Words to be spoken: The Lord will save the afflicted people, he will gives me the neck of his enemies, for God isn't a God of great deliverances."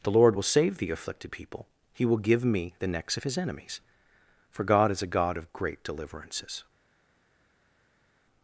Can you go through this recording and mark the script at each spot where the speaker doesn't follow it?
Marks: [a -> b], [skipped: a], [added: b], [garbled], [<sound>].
The Lord will save the afflicted people, he will [gives -> give] me the [neck -> necks] of his enemies, for God [isn't -> is] a God of great deliverances."